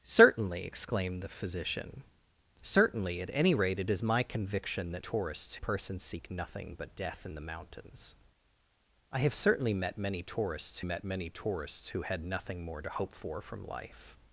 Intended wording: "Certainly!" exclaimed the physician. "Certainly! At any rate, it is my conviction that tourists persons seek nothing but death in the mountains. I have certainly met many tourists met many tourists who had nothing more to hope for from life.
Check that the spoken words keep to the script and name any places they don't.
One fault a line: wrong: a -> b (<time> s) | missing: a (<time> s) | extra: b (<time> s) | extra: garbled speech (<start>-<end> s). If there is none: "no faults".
no faults